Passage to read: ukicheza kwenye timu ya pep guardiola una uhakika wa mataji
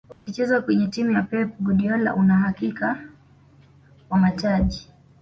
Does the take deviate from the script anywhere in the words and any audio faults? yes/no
yes